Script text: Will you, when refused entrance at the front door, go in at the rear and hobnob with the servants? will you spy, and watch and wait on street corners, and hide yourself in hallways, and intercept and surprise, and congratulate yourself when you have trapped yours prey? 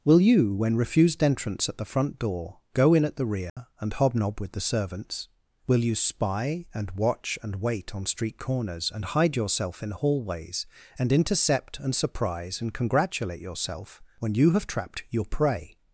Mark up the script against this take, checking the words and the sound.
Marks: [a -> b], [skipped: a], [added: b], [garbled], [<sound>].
Will you, when refused entrance at the front door, go in at the rear [dropout] and hobnob with the servants? will you spy, and watch and wait on street corners, and hide yourself in hallways, and intercept and surprise, and congratulate yourself when you have trapped [yours -> your] prey?